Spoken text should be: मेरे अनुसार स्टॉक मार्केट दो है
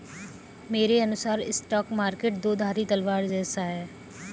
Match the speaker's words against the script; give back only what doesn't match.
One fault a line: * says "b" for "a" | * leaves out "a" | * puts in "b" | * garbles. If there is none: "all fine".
* puts in "धारी तलवार जैसा"